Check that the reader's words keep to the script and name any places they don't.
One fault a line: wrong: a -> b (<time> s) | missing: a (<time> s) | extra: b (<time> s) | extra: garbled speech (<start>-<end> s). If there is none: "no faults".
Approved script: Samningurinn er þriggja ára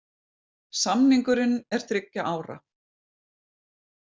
no faults